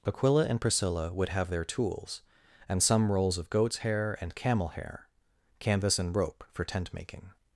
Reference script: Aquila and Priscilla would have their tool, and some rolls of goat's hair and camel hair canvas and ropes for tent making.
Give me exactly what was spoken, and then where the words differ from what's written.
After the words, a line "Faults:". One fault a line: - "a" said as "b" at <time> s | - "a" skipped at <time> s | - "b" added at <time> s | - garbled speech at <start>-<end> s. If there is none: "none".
Aquila and Priscilla would have their tools, and some rolls of goat's hair and camel hair canvas and rope for tent making.
Faults:
- "tool" said as "tools" at 1.6 s
- "ropes" said as "rope" at 6.2 s